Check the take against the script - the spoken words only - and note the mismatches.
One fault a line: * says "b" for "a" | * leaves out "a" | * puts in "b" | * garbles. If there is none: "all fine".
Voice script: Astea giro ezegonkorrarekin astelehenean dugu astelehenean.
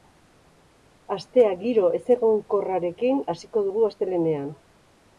* says "hasiko" for "astelehenean"